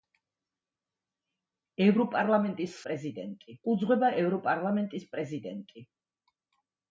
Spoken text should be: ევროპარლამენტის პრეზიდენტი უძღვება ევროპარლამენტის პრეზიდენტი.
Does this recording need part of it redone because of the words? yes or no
no